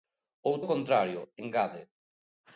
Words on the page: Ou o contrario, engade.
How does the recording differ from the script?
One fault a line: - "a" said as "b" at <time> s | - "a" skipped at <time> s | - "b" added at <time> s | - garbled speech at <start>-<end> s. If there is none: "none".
none